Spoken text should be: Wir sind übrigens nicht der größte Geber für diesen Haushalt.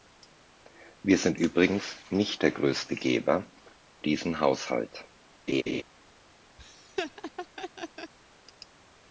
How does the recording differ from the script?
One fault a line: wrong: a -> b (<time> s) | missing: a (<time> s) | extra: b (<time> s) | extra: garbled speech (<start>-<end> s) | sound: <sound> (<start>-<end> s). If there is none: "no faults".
missing: für (3.4 s)
sound: laugh (5.5-5.8 s)
sound: laugh (6.6-8.1 s)